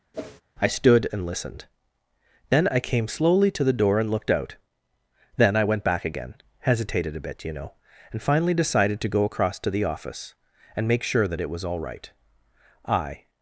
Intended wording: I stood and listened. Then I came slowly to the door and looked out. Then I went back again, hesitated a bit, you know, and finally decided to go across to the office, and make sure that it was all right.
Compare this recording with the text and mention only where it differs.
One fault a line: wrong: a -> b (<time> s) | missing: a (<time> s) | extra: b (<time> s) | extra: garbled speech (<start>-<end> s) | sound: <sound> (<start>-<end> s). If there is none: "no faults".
sound: whoosh (0.1-0.4 s)
extra: I (12.9 s)